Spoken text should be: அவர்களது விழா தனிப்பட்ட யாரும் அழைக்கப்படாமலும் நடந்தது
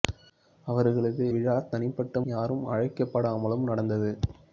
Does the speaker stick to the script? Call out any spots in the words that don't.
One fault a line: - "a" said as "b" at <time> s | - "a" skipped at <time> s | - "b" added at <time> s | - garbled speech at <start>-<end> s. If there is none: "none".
none